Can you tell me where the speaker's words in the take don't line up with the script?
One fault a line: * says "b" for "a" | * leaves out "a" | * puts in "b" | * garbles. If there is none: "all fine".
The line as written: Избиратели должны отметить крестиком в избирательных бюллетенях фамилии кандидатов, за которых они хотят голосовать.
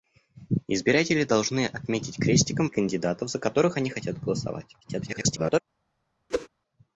* leaves out "избирательных бюллетенях фамилии"
* garbles